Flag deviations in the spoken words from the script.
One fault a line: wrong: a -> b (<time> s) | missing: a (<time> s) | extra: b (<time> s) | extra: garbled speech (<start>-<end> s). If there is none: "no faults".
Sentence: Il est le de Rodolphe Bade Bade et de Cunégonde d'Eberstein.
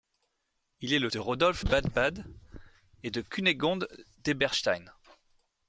no faults